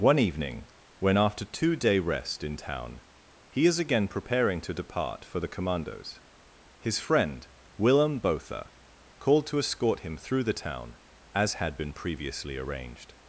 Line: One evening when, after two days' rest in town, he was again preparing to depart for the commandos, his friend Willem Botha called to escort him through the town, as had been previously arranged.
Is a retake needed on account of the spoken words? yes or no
yes